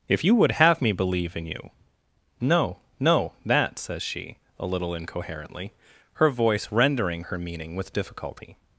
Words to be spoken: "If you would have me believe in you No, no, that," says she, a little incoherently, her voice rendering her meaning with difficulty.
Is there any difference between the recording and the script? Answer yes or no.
no